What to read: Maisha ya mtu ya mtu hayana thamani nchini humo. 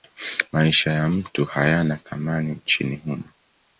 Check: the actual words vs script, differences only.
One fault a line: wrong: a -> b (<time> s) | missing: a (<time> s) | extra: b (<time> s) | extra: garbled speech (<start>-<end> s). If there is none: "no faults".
missing: ya mtu (1.4 s)